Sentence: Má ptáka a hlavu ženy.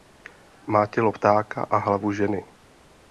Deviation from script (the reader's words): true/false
true